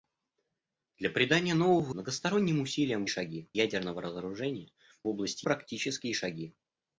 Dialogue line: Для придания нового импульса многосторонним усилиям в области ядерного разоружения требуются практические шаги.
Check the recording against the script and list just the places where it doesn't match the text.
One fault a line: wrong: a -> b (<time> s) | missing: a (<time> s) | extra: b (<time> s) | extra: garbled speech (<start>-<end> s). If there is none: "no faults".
missing: импульса (1.9 s)
wrong: области -> шаги (3.1 s)
wrong: требуются -> области (5.1 s)